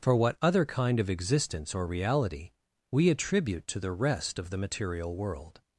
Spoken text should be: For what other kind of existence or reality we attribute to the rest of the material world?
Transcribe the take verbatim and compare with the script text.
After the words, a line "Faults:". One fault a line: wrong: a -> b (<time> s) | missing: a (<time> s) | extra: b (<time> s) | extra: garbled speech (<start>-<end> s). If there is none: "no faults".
For what other kind of existence or reality we attribute to the rest of the material world?
Faults:
no faults